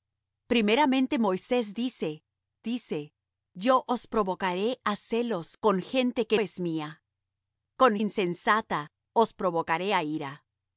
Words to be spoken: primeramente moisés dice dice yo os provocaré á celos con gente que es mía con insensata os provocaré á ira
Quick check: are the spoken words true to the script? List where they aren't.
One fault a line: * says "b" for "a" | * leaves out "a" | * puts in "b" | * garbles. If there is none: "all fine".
all fine